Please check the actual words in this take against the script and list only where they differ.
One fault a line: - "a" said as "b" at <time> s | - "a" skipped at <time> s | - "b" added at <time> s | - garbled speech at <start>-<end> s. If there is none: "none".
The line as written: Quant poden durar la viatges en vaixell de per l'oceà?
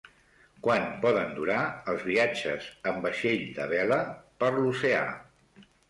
- "la" said as "els" at 1.9 s
- "vela" added at 3.8 s